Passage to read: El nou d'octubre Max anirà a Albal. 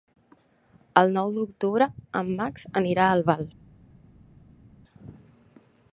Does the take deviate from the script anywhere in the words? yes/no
yes